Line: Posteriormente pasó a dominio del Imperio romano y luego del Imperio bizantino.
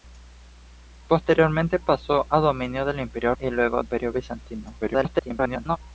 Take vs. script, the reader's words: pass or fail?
fail